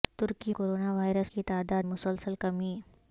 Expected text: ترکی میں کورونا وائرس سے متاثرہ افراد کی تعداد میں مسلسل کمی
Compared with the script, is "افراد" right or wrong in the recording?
wrong